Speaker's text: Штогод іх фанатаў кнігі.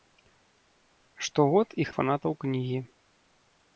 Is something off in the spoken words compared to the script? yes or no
no